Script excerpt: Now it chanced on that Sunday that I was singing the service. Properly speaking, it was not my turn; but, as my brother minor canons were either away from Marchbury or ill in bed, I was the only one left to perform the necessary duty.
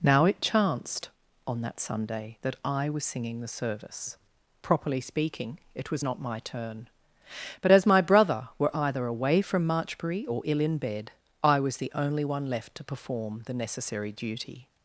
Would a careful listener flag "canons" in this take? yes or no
yes